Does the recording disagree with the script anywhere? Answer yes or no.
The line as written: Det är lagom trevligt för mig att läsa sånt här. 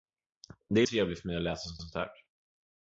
yes